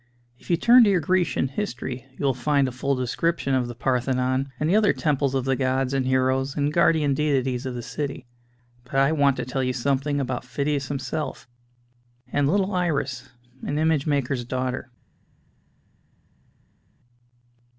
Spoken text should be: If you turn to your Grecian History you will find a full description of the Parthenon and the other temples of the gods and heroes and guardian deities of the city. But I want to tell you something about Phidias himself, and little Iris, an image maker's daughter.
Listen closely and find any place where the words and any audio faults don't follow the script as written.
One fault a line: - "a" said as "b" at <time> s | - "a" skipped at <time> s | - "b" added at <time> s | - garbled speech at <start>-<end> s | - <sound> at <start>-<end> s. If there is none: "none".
none